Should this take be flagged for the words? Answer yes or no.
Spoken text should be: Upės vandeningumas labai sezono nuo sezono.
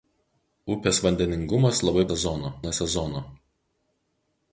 no